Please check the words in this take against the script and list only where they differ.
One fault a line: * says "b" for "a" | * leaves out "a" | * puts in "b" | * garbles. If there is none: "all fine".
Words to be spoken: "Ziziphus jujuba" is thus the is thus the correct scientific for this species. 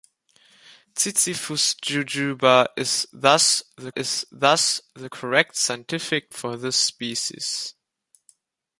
all fine